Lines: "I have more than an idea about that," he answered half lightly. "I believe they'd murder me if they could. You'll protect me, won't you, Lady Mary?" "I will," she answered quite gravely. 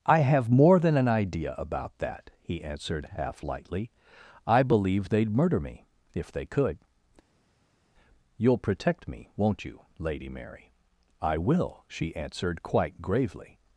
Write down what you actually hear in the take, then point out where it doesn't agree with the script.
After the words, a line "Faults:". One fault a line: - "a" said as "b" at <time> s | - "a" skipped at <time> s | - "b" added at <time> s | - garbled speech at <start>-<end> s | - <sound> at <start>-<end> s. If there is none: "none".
"I have more than an idea about that," he answered half lightly. "I believe they'd murder me if they could. You'll protect me, won't you, Lady Mary?" "I will," she answered quite gravely.
Faults:
none